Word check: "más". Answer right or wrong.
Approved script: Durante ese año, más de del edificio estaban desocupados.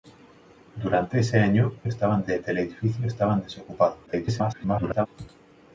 wrong